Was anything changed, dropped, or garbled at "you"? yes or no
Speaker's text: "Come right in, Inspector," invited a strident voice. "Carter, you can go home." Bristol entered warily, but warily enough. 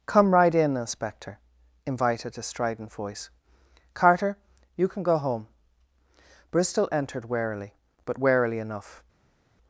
no